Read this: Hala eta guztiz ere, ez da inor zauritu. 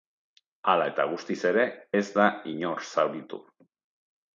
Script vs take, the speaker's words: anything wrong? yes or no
no